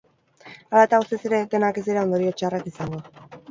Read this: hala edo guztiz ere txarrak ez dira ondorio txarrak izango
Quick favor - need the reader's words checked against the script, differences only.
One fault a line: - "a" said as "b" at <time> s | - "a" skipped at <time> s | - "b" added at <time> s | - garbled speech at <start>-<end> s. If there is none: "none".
- "edo" said as "eta" at 0.9 s
- "txarrak" said as "denak" at 1.5 s